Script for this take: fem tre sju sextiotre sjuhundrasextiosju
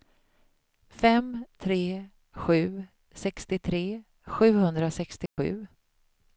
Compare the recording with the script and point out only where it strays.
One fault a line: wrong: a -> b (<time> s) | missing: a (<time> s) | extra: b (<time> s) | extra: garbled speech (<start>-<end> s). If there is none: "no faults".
no faults